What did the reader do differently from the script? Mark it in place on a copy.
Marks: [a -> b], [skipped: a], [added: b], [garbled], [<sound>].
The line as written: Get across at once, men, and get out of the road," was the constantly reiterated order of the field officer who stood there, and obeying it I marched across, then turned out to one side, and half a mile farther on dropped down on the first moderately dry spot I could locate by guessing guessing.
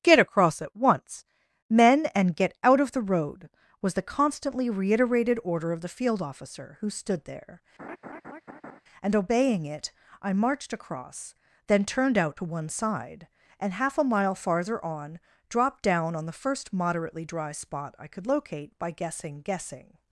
Get across at once, men, and get out of the road," was the constantly reiterated order of the field officer who stood there, [laugh] and obeying it I marched across, then turned out to one side, and half a mile farther on dropped down on the first moderately dry spot I could locate by guessing guessing.